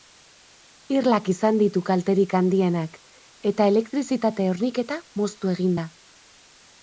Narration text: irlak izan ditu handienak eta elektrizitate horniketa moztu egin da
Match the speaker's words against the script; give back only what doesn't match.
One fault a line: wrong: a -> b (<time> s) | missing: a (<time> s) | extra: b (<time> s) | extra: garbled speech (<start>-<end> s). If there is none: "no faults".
extra: kalterik (1.9 s)